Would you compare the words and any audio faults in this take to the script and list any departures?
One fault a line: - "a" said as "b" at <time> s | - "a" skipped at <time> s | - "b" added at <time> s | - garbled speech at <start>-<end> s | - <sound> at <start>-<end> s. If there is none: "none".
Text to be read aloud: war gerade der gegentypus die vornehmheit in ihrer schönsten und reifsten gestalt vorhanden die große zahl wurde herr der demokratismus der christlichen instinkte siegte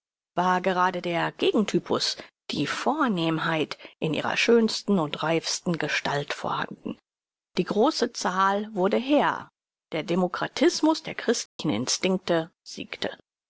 - dropout at 11.5-11.6 s